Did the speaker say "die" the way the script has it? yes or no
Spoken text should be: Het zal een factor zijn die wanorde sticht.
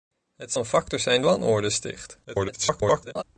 no